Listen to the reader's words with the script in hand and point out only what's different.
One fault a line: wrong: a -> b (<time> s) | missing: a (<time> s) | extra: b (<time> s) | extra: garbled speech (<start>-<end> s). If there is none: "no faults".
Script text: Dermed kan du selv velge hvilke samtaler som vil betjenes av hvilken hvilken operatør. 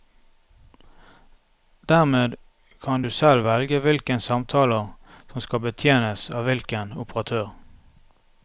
wrong: vil -> skal (5.4 s)
missing: hvilken (6.9 s)